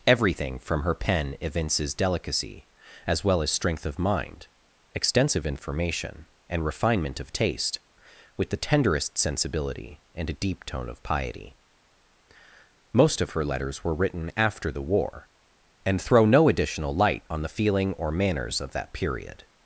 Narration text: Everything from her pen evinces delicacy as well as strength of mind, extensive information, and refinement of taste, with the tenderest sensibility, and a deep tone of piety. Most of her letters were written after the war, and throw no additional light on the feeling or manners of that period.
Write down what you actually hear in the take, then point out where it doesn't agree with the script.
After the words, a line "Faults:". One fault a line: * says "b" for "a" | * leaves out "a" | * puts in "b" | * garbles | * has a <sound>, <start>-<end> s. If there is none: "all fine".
Everything from her pen evinces delicacy as well as strength of mind, extensive information, and refinement of taste, with the tenderest sensibility, and a deep tone of piety. Most of her letters were written after the war, and throw no additional light on the feeling or manners of that period.
Faults:
all fine